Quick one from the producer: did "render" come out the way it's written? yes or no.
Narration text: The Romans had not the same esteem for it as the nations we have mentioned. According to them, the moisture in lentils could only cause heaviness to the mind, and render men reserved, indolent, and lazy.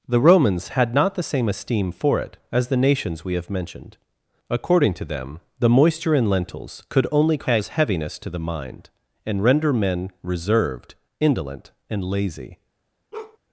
yes